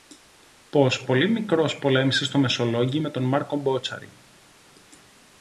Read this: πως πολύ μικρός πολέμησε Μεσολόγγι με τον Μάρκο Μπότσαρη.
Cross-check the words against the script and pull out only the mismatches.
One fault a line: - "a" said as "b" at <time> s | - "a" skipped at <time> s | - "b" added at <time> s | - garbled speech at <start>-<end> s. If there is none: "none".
- "στο" added at 2.2 s